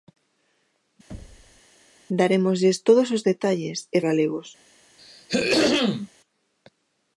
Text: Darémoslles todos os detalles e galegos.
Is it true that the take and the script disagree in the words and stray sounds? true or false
true